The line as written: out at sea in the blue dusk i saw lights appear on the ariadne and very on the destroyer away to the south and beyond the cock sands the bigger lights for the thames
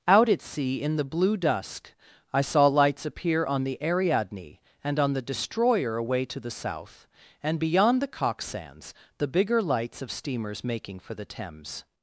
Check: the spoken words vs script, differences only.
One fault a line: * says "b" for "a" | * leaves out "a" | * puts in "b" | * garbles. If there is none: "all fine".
* leaves out "very"
* puts in "of steamers making"